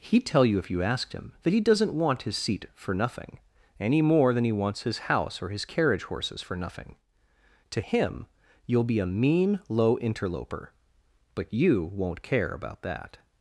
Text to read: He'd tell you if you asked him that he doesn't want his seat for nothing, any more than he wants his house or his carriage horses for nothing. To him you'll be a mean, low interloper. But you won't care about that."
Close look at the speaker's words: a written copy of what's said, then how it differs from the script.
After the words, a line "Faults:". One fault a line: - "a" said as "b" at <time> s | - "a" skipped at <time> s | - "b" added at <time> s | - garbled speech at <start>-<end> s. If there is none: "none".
He'd tell you if you asked him that he doesn't want his seat for nothing, any more than he wants his house or his carriage horses for nothing. To him you'll be a mean, low interloper. But you won't care about that."
Faults:
none